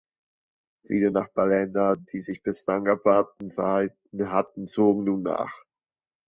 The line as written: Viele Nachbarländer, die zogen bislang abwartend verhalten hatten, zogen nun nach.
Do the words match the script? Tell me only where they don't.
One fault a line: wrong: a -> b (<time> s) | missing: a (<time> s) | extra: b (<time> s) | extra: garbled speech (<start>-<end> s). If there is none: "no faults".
wrong: zogen -> sich (2.2 s)